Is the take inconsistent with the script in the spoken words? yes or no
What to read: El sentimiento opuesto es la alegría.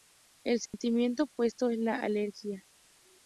no